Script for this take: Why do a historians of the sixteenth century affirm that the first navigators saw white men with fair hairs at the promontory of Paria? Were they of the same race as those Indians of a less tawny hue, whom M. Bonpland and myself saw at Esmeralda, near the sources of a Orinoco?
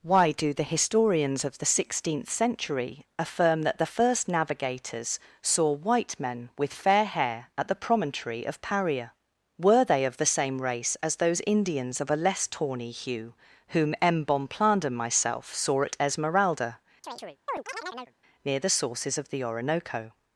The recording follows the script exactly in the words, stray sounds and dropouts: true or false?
false